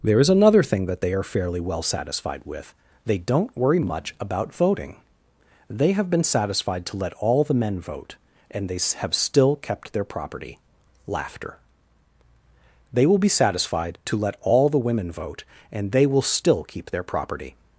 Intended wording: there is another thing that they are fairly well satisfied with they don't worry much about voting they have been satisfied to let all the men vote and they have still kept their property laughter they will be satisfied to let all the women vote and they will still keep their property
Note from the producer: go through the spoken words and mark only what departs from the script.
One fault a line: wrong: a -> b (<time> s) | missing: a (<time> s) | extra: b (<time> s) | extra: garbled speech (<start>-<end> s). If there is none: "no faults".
no faults